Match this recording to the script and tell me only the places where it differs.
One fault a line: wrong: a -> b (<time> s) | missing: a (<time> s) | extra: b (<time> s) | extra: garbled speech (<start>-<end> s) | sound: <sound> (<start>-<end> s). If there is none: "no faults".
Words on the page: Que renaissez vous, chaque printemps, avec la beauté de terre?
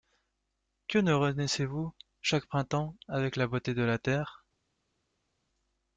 extra: ne (1.0 s)
extra: la (3.8 s)